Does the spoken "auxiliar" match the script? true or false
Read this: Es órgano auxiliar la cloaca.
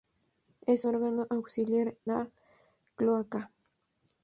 true